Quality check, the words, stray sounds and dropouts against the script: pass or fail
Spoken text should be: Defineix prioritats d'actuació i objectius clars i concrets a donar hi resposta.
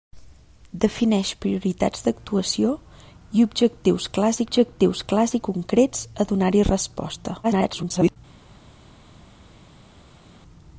fail